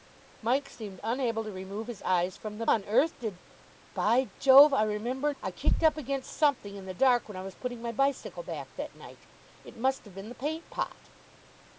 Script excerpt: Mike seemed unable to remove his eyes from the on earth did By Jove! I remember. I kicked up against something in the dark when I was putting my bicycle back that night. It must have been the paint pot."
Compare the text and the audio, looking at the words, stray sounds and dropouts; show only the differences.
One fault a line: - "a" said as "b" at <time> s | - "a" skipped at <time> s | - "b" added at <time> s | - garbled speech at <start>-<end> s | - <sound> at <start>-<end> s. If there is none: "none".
none